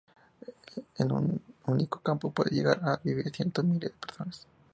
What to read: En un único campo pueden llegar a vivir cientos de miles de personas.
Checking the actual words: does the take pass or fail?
pass